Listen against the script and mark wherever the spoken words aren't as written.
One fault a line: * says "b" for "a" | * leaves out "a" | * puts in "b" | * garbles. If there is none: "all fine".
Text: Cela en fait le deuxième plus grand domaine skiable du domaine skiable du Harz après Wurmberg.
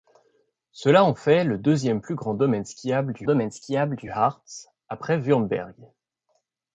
all fine